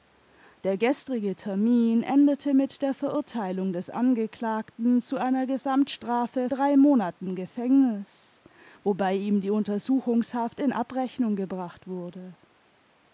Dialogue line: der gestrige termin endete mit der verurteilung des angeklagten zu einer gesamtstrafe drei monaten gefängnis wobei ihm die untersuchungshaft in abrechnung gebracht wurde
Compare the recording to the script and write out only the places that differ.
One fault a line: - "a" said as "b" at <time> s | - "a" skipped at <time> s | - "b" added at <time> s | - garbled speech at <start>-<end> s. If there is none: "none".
none